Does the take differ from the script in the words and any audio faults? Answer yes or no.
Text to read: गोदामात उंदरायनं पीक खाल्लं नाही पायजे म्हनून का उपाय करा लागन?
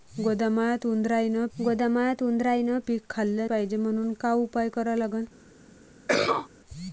yes